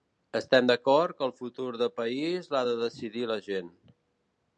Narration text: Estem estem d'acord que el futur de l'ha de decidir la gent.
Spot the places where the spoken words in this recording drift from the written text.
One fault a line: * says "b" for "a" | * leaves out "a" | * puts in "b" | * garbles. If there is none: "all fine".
* leaves out "estem"
* puts in "país"